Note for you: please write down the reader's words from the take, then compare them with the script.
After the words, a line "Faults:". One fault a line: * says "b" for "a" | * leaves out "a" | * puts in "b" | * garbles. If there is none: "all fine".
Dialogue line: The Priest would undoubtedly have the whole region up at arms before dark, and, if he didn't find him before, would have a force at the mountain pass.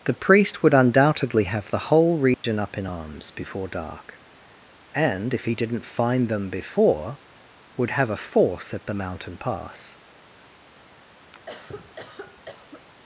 The Priest would undoubtedly have the whole region up in arms before dark, and, if he didn't find them before, would have a force at the mountain pass.
Faults:
* says "in" for "at"
* says "them" for "him"